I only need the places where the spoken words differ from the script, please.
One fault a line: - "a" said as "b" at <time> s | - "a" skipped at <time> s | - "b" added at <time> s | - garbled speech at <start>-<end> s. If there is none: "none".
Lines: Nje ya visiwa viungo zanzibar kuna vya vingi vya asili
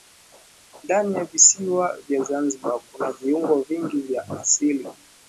- "Nje" said as "Ndani" at 0.8 s
- "viungo" said as "vya" at 2.1 s
- "vya" said as "viungo" at 3.1 s